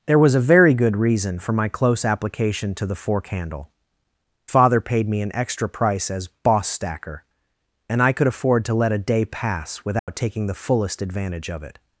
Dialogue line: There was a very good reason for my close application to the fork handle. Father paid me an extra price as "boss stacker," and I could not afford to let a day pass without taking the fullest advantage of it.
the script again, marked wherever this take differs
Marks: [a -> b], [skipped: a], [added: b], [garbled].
There was a very good reason for my close application to the fork handle. Father paid me an extra price as "boss stacker," and I could [skipped: not] afford to let a day pass without taking the fullest advantage of it.